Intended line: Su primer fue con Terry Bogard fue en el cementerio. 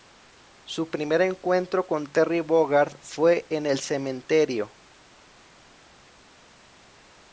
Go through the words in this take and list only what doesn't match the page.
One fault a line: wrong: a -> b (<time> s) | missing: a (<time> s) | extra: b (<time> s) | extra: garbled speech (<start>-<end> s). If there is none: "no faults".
wrong: fue -> encuentro (1.2 s)